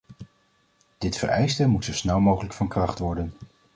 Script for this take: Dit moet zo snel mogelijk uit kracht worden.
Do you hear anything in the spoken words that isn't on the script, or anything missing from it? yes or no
yes